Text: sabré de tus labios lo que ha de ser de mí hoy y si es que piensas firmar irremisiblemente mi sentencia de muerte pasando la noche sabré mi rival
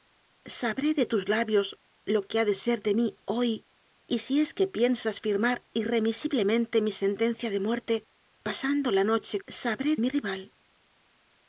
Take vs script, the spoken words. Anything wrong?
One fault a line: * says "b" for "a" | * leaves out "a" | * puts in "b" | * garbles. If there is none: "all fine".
all fine